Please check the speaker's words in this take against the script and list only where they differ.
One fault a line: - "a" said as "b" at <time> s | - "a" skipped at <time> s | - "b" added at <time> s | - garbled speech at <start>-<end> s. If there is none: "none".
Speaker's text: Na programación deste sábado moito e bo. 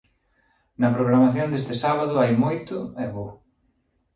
- "hai" added at 2.2 s